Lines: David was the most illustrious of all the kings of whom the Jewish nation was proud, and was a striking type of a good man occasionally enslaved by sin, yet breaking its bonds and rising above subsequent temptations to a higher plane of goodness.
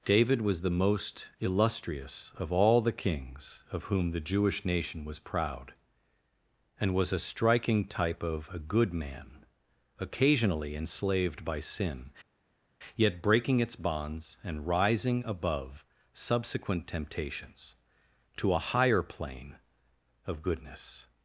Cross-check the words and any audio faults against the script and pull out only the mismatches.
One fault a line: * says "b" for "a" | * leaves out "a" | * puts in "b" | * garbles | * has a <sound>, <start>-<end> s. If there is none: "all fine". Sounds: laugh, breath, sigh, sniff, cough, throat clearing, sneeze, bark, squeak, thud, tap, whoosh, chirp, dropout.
all fine